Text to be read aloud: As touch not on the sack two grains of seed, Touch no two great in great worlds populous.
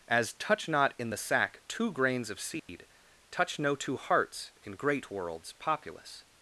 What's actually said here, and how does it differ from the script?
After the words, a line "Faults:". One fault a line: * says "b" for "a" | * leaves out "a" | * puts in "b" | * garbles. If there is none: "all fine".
As touch not in the sack two grains of seed, Touch no two hearts in great worlds populous.
Faults:
* says "in" for "on"
* says "hearts" for "great"